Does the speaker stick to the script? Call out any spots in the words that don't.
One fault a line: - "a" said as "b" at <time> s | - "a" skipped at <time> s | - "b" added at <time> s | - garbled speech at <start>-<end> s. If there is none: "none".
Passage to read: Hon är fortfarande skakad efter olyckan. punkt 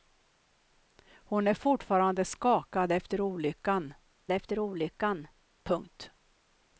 - "efter olyckan" added at 4.3 s